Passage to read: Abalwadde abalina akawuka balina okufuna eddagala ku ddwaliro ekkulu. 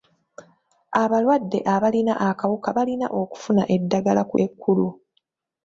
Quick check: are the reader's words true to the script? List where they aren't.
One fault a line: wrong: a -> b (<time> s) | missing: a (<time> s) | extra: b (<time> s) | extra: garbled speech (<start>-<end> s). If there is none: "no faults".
missing: ddwaliro (4.3 s)